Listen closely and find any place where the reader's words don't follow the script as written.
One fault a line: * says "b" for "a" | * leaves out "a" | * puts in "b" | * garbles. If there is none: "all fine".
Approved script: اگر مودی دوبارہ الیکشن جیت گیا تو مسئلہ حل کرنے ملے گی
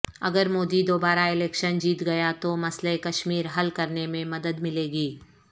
* puts in "کشمیر"
* puts in "میں مدد"